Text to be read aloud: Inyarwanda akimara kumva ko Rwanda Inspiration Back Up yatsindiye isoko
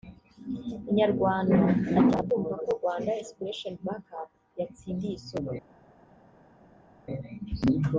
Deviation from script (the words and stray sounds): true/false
false